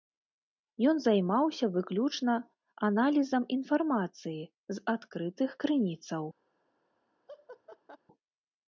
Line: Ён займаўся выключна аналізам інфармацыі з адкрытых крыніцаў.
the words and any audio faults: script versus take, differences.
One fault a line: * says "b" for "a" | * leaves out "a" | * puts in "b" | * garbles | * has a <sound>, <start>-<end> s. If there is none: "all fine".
* has a laugh, 7.3-8.0 s